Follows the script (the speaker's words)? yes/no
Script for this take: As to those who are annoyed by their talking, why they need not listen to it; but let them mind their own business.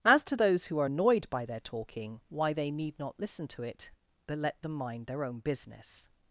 yes